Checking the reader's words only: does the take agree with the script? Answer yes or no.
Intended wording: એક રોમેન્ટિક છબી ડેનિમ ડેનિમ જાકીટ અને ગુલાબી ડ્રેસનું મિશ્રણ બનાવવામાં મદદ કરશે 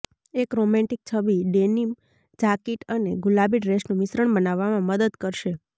no